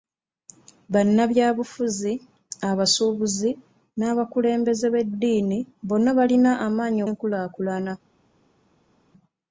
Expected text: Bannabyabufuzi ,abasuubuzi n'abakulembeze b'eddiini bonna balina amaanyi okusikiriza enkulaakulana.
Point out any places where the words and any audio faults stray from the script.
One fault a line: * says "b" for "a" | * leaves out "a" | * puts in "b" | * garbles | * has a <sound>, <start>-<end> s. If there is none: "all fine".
* leaves out "okusikiriza"